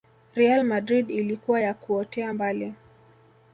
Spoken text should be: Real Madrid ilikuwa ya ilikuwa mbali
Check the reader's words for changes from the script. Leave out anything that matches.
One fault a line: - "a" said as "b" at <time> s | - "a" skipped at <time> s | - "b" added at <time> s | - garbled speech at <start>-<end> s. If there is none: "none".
- "ilikuwa" said as "kuotea" at 1.7 s